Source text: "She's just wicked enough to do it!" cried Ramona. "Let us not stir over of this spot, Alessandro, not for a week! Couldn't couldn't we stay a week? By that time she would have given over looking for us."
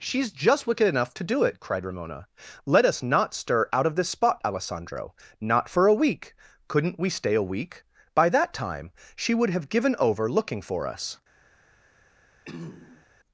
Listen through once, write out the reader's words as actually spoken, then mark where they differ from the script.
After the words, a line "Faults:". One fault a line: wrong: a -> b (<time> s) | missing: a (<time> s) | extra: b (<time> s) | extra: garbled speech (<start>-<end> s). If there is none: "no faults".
"She's just wicked enough to do it!" cried Ramona. "Let us not stir out of this spot, Alessandro, not for a week! Couldn't we stay a week? By that time she would have given over looking for us."
Faults:
wrong: over -> out (3.7 s)
missing: couldn't (7.0 s)